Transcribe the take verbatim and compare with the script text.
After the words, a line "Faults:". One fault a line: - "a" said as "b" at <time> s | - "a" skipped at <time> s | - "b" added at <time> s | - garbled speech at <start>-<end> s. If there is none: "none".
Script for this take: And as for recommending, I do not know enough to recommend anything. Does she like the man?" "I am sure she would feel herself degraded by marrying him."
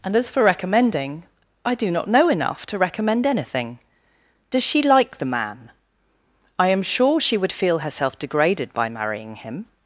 And as for recommending, I do not know enough to recommend anything. Does she like the man?" "I am sure she would feel herself degraded by marrying him."
Faults:
none